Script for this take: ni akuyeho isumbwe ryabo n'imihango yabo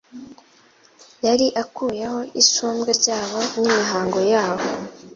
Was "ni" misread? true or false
true